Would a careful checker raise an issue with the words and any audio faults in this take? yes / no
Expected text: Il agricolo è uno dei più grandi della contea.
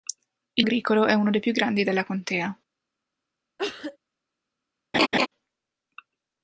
yes